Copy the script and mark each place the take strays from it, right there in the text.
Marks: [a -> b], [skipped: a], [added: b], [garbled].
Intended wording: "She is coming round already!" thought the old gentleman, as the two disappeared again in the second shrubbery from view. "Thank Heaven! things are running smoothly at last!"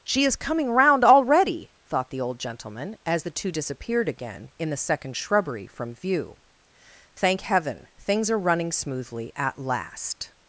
"She is coming round already!" thought the old gentleman, as the two disappeared again in the second shrubbery from view. "Thank Heaven! things are running smoothly at last!"